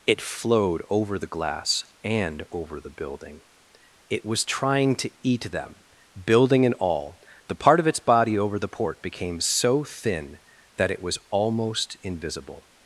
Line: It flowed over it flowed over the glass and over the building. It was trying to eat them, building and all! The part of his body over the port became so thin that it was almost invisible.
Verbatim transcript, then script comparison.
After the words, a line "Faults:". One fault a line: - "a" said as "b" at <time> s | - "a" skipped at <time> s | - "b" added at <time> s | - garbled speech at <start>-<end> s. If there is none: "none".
It flowed over the glass and over the building. It was trying to eat them, building and all! The part of its body over the port became so thin that it was almost invisible.
Faults:
- "it flowed over" skipped at 1.2 s
- "his" said as "its" at 7.9 s